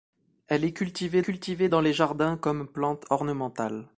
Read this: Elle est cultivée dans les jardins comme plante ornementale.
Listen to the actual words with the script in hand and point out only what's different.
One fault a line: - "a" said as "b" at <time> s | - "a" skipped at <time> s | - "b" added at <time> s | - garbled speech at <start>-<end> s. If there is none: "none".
- "cultivée" added at 1.2 s